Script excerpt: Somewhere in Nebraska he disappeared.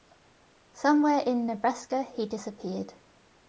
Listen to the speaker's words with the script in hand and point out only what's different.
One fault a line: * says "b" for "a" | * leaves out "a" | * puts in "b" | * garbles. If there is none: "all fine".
all fine